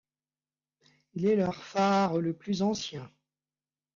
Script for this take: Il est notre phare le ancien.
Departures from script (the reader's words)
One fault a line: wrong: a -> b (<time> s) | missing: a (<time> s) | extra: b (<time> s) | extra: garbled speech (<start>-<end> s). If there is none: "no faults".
wrong: notre -> leur (1.4 s)
extra: plus (2.4 s)